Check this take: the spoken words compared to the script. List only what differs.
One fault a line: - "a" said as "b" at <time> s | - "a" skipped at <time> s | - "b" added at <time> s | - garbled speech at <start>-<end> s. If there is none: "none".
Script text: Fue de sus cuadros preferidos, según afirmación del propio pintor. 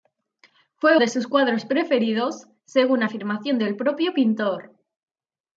none